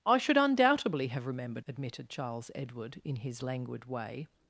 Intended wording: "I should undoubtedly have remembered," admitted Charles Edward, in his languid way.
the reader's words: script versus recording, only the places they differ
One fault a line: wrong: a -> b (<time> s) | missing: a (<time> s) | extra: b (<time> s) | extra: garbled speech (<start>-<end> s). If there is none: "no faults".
no faults